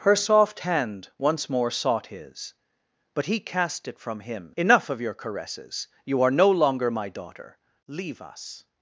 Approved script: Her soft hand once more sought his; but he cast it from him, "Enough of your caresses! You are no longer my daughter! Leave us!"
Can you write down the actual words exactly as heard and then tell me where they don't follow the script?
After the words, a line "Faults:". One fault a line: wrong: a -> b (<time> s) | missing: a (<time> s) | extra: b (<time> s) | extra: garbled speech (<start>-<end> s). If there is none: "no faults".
Her soft hand once more sought his; but he cast it from him, "Enough of your caresses! You are no longer my daughter! Leave us!"
Faults:
no faults